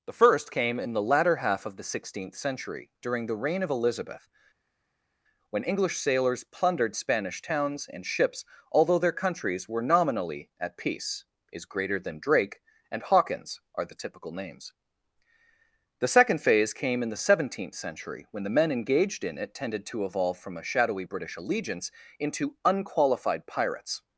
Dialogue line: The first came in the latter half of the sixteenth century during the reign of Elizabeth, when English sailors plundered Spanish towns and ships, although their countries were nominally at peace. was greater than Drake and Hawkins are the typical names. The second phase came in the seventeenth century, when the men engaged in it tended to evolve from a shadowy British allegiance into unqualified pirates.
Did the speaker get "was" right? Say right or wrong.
wrong